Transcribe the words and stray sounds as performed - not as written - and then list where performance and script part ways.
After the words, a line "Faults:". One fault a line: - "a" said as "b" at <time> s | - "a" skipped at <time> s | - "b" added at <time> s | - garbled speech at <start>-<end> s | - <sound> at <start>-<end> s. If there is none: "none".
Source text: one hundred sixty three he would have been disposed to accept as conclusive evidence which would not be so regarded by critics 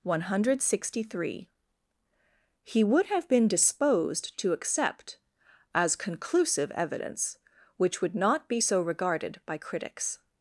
one hundred sixty three he would have been disposed to accept as conclusive evidence which would not be so regarded by critics
Faults:
none